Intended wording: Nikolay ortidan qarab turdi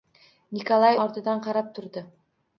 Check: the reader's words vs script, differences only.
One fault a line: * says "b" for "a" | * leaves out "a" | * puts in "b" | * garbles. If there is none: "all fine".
all fine